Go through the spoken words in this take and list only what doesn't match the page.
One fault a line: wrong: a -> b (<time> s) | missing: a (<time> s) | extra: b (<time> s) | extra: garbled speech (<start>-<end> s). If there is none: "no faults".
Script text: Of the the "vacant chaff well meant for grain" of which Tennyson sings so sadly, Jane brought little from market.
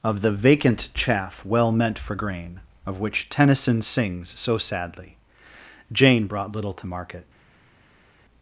missing: the (0.3 s)
wrong: from -> to (6.7 s)